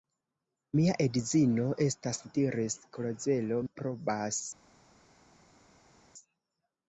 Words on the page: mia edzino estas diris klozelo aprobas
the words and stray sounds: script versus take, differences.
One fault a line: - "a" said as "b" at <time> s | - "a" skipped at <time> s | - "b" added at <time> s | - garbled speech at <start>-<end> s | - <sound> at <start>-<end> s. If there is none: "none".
none